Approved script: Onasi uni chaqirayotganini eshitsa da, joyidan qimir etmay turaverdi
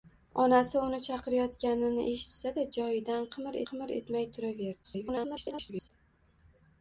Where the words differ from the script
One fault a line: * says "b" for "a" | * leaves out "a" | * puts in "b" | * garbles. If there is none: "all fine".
* puts in "qimir"
* garbles